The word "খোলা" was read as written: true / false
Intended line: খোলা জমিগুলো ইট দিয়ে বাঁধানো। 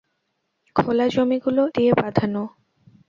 true